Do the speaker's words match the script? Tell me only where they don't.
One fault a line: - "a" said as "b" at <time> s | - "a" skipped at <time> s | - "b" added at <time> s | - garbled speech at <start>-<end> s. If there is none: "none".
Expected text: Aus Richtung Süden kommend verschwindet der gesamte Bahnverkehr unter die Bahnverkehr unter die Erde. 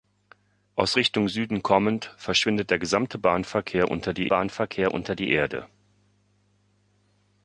none